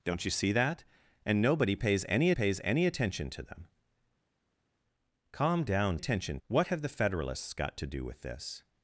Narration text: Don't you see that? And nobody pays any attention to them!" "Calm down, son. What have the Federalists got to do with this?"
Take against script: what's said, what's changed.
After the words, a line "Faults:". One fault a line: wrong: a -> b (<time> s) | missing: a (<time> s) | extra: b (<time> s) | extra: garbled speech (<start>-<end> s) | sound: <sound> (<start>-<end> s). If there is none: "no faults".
Don't you see that? And nobody pays any pays any attention to them!" "Calm down, attention. What have the Federalists got to do with this?"
Faults:
extra: pays any (2.3 s)
wrong: son -> attention (5.9 s)